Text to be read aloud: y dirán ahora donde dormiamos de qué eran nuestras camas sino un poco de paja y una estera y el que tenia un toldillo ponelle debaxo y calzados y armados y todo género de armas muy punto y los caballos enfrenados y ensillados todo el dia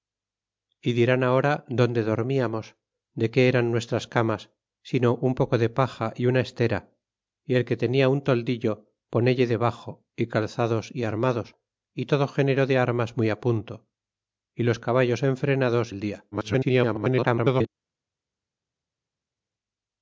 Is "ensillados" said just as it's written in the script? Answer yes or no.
no